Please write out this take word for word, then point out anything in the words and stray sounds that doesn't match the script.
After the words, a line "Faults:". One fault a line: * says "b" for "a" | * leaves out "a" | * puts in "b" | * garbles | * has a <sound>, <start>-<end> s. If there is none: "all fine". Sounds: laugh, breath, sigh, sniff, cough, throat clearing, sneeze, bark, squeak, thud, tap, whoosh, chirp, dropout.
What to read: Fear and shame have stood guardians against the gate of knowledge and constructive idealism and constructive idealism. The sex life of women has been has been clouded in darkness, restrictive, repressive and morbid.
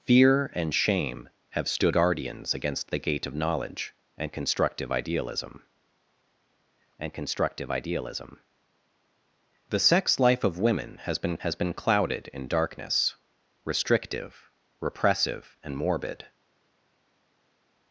Fear and shame have stood guardians against the gate of knowledge and constructive idealism and constructive idealism. The sex life of women has been has been clouded in darkness, restrictive, repressive and morbid.
Faults:
all fine